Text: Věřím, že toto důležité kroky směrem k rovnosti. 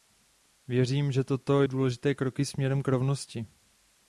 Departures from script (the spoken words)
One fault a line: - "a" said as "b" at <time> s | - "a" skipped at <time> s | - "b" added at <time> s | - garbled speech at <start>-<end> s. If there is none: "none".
none